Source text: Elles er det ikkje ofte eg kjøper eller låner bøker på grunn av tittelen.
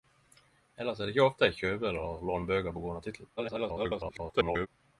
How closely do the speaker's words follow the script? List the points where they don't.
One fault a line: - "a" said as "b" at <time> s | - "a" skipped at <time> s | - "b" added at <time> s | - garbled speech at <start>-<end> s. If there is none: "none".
- garbled speech at 3.4-4.7 s